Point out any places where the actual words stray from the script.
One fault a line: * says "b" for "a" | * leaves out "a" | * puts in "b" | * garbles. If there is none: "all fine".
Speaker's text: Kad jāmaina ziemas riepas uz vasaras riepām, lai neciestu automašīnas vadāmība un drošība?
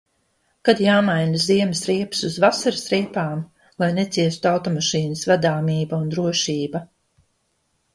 all fine